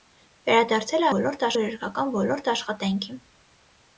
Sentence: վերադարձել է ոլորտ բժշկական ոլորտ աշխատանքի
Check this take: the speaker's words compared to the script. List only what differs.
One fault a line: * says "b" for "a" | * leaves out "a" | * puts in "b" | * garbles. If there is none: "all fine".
all fine